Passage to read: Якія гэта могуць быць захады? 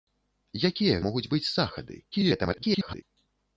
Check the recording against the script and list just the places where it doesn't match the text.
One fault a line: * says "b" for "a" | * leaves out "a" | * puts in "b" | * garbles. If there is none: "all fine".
* leaves out "гэта"
* garbles